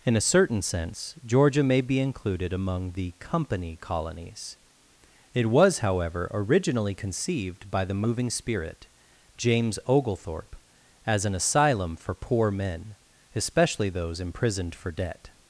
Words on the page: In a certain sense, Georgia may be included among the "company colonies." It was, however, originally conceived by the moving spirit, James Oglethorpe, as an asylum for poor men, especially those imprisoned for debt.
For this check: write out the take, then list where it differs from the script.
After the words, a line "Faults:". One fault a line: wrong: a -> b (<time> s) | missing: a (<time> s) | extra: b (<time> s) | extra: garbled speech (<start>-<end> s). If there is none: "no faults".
In a certain sense, Georgia may be included among the "company colonies." It was, however, originally conceived by the moving spirit, James Oglethorpe, as an asylum for poor men, especially those imprisoned for debt.
Faults:
no faults